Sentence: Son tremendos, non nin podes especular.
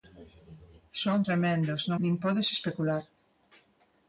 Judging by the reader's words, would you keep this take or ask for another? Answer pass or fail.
pass